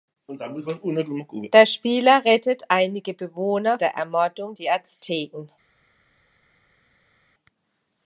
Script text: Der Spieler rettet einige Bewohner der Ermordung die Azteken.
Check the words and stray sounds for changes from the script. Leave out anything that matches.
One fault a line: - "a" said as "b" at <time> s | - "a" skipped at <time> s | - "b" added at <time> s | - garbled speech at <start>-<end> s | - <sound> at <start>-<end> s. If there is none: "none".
none